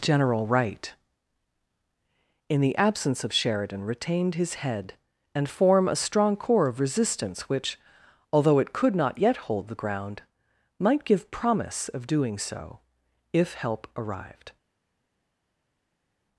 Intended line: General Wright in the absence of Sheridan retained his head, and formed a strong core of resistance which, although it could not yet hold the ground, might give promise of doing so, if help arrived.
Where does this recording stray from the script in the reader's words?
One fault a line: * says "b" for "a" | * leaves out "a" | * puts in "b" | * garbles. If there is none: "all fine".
* says "form" for "formed"